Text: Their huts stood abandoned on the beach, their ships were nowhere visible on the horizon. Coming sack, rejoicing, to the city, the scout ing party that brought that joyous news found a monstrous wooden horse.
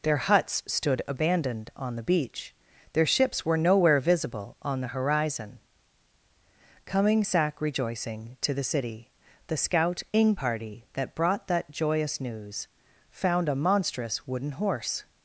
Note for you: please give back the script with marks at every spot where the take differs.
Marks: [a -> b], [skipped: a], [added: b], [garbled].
Their huts stood abandoned on the beach, their ships were nowhere visible on the horizon. Coming sack, rejoicing, to the city, the scout ing party that brought that joyous news found a monstrous wooden horse.